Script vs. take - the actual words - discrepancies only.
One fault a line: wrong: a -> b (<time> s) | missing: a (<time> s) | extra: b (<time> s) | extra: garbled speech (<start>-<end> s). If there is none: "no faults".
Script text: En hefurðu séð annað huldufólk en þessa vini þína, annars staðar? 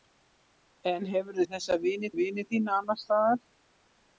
missing: séð annað huldufólk (1.4 s)
extra: vini (2.2 s)